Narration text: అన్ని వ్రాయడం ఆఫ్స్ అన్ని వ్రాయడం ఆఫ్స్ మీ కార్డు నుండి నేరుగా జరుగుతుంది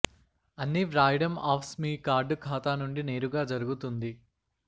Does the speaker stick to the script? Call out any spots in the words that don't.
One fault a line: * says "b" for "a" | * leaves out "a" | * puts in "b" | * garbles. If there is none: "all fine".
* leaves out "అన్ని వ్రాయడం ఆఫ్స్"
* puts in "ఖాతా"